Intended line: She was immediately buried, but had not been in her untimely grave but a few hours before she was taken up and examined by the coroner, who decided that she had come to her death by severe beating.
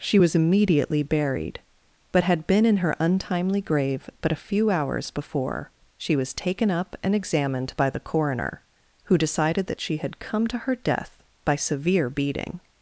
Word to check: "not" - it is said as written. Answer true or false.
false